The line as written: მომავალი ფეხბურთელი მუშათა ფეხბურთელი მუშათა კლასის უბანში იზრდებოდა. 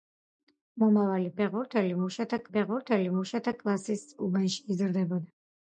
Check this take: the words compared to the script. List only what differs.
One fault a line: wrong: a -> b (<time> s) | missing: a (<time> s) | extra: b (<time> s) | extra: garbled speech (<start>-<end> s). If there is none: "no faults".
no faults